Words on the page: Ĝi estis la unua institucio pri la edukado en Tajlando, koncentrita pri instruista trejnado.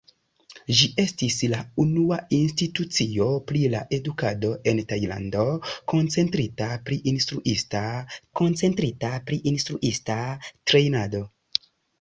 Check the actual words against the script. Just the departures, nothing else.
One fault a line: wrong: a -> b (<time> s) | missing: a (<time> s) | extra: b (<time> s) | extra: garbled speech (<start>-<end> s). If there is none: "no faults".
extra: koncentrita pri instruista (8.4 s)